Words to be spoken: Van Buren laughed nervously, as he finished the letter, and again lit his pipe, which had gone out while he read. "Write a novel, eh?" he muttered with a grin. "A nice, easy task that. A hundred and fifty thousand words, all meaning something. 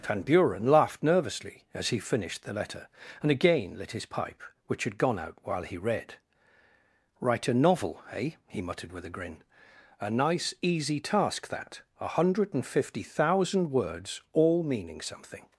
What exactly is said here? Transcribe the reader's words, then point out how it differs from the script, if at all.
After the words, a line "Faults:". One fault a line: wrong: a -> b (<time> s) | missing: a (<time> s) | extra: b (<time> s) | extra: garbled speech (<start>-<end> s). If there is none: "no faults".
Van Buren laughed nervously, as he finished the letter, and again lit his pipe, which had gone out while he read. "Write a novel, eh?" he muttered with a grin. "A nice, easy task that. A hundred and fifty thousand words, all meaning something.
Faults:
no faults